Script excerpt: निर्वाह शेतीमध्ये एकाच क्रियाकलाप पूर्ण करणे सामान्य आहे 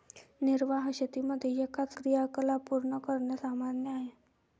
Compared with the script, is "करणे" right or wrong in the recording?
right